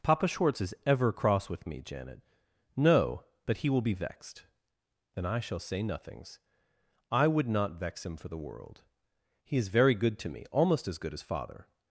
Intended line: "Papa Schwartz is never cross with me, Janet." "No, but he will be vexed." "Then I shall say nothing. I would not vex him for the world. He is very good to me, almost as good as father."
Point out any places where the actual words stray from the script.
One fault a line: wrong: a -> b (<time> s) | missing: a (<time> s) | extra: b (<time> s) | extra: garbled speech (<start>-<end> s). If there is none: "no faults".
wrong: never -> ever (0.8 s)
wrong: nothing -> nothings (5.8 s)